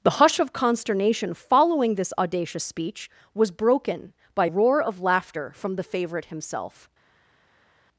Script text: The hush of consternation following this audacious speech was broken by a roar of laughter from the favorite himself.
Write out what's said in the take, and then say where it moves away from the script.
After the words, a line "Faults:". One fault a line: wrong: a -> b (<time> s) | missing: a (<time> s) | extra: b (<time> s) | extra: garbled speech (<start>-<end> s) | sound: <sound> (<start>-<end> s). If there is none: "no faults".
The hush of consternation following this audacious speech was broken by roar of laughter from the favorite himself.
Faults:
missing: a (4.5 s)